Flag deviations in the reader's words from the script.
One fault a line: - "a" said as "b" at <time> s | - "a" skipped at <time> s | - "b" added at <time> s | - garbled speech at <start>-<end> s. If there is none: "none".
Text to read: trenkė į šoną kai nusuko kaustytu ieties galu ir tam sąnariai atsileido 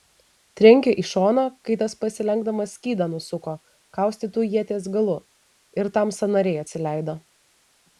- "tas pasilenkdamas skydą" added at 1.8 s